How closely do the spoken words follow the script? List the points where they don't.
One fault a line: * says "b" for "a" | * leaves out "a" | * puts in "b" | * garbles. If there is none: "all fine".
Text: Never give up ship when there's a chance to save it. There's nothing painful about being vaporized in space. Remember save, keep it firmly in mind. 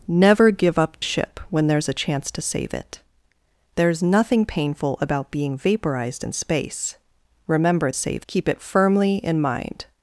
all fine